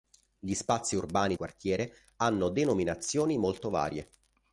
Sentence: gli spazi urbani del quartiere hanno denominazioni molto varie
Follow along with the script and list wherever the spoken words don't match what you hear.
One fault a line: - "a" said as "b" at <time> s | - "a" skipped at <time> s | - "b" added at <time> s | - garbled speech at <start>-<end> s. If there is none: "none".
- "del" skipped at 1.4 s